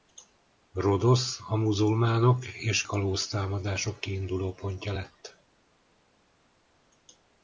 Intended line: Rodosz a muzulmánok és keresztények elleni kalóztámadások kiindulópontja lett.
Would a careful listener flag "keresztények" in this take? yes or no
yes